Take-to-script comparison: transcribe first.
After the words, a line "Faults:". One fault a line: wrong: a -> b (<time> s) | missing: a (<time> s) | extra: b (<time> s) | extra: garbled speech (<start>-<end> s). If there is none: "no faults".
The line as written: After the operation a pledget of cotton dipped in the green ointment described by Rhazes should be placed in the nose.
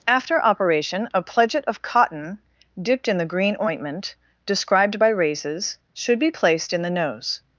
After operation a pledget of cotton dipped in the green ointment described by Rhazes should be placed in the nose.
Faults:
missing: the (0.4 s)